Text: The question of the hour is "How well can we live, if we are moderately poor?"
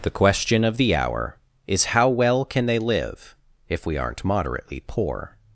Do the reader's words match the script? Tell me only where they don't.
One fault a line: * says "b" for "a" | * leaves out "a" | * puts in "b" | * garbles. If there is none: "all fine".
* says "they" for "we"
* says "aren't" for "are"